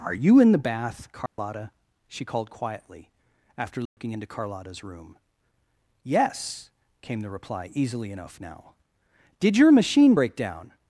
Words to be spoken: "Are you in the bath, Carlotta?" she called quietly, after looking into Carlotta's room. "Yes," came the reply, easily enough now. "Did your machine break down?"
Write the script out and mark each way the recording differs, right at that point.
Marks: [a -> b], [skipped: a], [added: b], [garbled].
"Are you in the bath, Carlotta?" she called quietly, after looking into Carlotta's room. "Yes," came the reply, easily enough now. "Did your machine break down?"